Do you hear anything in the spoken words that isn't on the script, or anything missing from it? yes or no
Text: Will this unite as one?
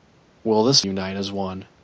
no